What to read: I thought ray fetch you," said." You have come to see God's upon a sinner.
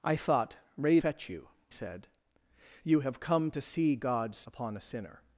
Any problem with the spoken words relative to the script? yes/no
no